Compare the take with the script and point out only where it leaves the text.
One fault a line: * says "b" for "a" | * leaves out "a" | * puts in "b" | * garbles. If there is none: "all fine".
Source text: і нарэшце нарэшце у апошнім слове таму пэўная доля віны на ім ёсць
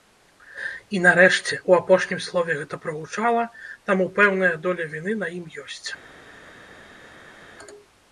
* leaves out "нарэшце"
* puts in "гэта прагучала"